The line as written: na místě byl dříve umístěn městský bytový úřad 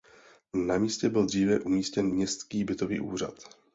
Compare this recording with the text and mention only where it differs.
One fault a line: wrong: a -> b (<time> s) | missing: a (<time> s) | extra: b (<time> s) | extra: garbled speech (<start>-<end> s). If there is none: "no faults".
no faults